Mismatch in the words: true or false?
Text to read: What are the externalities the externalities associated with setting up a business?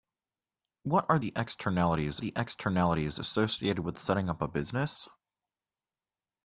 false